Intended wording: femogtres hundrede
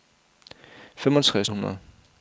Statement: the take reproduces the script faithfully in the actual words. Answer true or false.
true